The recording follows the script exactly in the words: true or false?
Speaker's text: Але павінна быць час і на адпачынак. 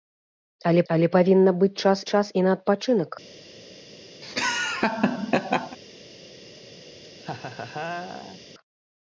false